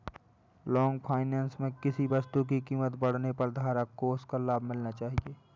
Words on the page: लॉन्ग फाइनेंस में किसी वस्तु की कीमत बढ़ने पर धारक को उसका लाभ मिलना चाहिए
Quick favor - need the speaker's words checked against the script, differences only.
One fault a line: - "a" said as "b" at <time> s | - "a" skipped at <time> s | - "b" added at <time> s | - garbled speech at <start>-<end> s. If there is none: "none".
none